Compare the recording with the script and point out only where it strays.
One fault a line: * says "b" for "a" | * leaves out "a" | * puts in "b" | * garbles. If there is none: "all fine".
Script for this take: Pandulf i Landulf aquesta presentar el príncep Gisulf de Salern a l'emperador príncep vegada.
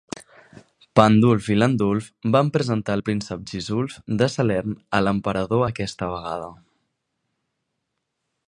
* says "van" for "aquesta"
* says "aquesta" for "príncep"